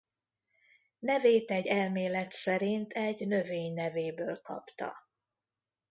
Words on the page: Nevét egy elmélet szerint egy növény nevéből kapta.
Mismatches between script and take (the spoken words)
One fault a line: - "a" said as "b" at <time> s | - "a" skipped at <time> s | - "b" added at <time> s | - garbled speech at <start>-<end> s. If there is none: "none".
none